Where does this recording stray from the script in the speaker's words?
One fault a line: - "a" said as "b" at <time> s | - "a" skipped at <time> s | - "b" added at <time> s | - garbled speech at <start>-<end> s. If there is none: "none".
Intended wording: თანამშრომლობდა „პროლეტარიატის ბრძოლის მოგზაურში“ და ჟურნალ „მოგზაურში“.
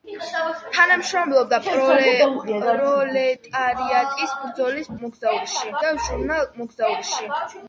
none